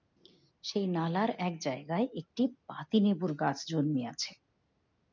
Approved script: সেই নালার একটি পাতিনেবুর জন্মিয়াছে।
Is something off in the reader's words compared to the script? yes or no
yes